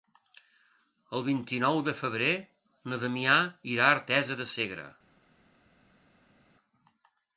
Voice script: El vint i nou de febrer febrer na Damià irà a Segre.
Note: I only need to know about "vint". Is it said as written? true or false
true